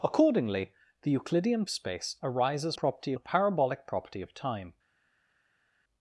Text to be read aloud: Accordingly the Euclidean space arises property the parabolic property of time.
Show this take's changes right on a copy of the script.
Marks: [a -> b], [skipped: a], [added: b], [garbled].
Accordingly the Euclidean space arises property the parabolic property of time.